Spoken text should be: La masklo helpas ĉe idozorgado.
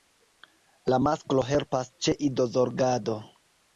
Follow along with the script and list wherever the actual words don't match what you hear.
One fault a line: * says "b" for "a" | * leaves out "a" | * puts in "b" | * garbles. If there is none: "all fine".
all fine